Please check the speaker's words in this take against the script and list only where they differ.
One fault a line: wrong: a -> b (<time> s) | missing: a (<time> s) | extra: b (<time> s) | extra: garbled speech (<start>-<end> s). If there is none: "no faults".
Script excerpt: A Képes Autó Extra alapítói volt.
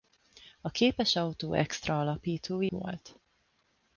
no faults